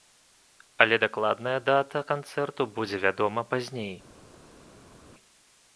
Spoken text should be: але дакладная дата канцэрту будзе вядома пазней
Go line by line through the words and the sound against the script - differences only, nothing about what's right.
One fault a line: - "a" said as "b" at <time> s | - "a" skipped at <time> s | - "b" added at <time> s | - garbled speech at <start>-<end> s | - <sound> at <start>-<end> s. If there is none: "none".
none